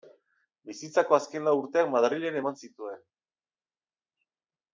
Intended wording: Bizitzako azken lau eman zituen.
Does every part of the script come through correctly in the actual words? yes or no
no